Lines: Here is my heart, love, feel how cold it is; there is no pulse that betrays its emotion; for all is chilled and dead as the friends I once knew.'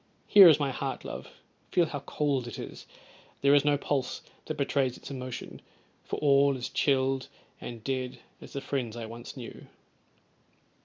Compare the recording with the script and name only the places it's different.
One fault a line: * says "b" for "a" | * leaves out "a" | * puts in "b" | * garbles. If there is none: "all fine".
all fine